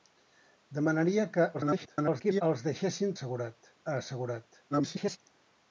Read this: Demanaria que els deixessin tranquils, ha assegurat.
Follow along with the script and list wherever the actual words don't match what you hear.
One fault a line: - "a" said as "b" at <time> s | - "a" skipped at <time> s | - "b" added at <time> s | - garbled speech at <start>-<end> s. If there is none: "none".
- garbled speech at 1.5-2.4 s
- "tranquils" said as "assegurat" at 3.2 s
- garbled speech at 4.7-5.2 s